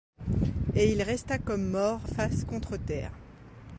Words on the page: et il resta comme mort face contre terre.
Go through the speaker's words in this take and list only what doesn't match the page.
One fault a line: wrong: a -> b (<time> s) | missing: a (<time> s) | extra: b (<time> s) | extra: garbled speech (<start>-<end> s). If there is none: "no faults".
no faults